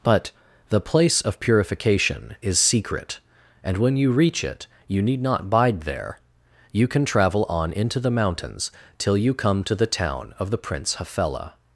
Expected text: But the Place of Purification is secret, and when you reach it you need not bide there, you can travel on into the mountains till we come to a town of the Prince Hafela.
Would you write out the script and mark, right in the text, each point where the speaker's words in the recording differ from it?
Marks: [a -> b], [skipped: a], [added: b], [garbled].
But the Place of Purification is secret, and when you reach it you need not bide there, you can travel on into the mountains till [we -> you] come to [a -> the] town of the Prince Hafela.